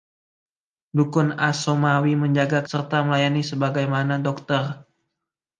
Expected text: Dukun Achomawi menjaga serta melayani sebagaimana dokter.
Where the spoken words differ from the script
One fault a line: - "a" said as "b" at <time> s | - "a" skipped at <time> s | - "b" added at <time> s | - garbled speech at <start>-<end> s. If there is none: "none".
none